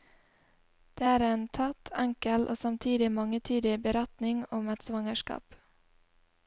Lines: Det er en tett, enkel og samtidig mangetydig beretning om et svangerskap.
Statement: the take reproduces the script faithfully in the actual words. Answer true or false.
true